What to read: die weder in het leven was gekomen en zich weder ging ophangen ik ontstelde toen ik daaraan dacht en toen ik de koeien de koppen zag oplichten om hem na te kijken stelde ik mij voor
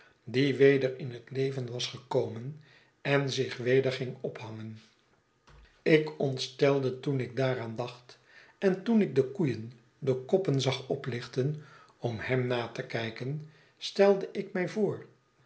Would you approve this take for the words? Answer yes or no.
yes